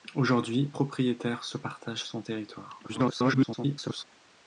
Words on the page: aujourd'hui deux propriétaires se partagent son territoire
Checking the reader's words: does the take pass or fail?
fail